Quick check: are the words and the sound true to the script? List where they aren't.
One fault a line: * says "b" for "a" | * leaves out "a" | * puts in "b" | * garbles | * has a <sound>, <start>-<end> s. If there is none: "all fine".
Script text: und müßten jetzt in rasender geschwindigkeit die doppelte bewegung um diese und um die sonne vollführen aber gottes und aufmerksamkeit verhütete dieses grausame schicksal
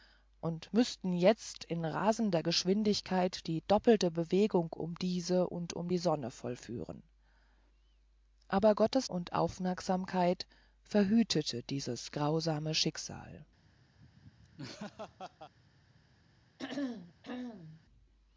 * has a laugh, 14.0-15.5 s
* has a throat clearing, 16.6-17.8 s